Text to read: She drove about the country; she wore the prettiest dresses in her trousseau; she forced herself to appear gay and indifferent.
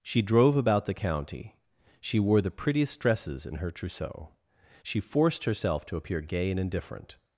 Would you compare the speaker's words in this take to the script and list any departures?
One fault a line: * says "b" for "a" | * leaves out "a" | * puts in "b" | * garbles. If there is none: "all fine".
* says "county" for "country"